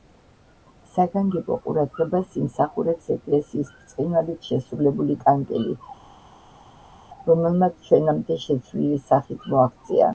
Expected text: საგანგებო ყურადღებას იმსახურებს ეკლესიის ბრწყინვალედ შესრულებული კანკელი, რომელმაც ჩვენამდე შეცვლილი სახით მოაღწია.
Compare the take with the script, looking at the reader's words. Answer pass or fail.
pass